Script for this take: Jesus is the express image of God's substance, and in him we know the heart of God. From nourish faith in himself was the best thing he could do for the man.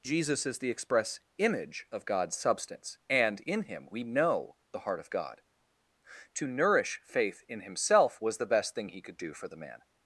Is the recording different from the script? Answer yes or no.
yes